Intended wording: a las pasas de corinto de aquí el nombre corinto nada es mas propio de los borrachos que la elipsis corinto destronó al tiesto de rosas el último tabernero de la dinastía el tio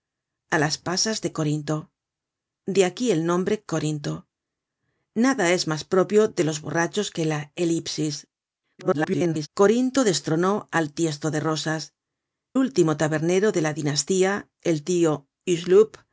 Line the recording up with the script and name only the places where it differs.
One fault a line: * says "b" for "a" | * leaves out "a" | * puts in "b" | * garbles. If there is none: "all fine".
* garbles
* leaves out "el"